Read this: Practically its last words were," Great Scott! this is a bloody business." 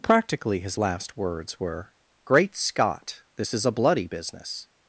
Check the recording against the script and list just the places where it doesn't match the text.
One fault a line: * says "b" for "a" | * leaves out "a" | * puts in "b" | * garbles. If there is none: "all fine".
* says "his" for "its"